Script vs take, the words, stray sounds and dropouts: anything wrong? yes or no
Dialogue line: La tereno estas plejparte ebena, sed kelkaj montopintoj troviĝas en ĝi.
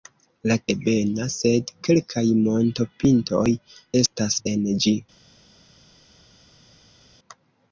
yes